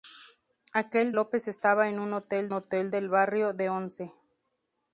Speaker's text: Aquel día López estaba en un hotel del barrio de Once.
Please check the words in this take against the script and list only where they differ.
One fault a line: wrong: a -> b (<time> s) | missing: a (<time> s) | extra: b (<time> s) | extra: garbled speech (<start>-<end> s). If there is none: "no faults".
missing: día (1.1 s)
extra: hotel (2.5 s)